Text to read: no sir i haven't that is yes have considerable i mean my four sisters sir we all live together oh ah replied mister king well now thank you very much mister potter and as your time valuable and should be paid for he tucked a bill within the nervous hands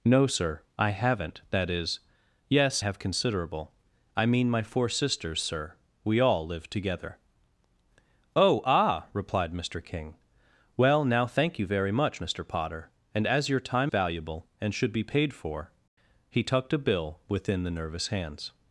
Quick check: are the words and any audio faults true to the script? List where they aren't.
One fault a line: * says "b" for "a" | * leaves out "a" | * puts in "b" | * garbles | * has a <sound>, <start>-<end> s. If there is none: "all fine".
all fine